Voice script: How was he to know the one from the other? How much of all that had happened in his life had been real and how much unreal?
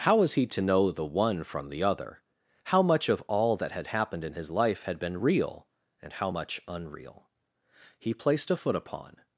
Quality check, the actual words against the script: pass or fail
fail